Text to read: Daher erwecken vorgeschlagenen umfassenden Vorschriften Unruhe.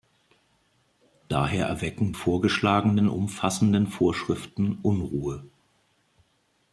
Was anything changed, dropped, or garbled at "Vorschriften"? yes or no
no